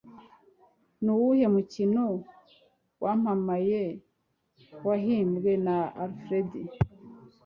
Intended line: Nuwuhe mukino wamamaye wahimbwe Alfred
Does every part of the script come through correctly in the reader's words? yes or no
no